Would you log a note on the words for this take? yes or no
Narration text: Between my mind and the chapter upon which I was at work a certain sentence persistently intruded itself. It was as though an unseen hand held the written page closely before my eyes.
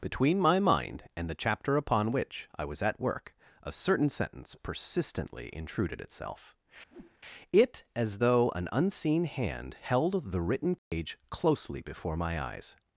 yes